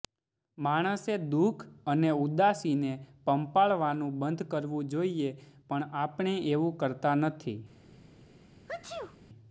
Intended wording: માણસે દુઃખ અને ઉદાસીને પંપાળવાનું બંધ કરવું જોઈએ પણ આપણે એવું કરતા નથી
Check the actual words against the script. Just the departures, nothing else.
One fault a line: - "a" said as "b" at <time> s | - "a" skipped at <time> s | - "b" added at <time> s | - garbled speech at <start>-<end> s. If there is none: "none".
none